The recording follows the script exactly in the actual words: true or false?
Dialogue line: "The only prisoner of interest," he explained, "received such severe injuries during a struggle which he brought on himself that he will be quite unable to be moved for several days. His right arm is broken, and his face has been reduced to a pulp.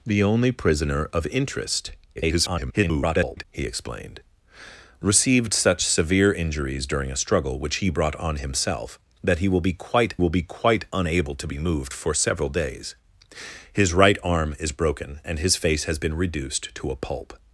false